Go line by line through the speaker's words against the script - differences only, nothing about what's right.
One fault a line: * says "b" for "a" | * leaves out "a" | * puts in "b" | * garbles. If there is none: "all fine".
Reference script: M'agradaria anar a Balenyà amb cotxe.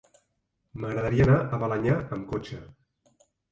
all fine